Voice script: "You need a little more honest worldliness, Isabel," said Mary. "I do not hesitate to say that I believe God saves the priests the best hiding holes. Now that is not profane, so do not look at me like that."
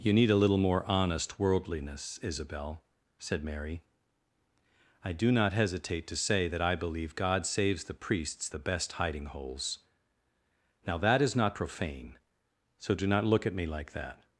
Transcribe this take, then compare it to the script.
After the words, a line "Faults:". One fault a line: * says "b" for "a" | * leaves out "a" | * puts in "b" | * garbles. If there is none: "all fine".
"You need a little more honest worldliness, Isabel," said Mary. "I do not hesitate to say that I believe God saves the priests the best hiding holes. Now that is not profane, so do not look at me like that."
Faults:
all fine